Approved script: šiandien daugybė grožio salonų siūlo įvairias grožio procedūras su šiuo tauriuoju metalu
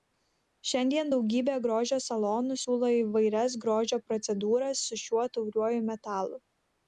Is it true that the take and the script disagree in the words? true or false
false